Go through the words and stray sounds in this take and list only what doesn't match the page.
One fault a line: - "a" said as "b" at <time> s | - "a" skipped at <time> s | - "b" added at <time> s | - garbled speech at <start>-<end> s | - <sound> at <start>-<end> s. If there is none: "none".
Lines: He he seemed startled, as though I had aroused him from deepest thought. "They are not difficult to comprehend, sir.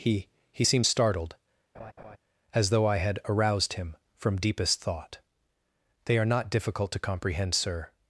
- laugh at 1.7-2.2 s